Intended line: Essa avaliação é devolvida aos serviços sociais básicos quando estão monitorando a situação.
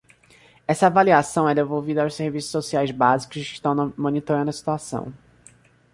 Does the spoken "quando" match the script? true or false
false